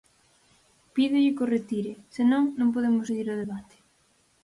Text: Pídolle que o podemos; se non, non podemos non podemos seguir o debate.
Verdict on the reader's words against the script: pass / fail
fail